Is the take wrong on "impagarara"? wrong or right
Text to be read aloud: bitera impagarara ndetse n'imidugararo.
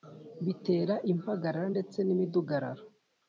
right